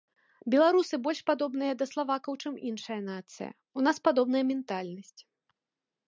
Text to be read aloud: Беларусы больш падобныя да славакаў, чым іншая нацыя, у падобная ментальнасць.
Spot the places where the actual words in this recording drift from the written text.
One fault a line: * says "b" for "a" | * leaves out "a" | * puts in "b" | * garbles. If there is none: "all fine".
* puts in "нас"